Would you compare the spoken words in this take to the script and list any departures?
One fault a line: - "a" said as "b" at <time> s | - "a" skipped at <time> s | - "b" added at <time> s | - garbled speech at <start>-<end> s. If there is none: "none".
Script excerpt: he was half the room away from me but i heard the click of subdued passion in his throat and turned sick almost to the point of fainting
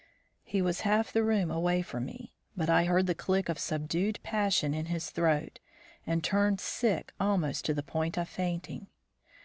none